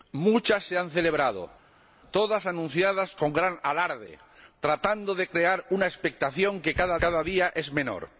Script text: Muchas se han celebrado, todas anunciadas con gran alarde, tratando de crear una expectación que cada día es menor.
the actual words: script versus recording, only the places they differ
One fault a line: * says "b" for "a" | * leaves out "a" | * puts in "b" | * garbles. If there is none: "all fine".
* puts in "cada"